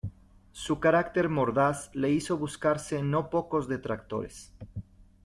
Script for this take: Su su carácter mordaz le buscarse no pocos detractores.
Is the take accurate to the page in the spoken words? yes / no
no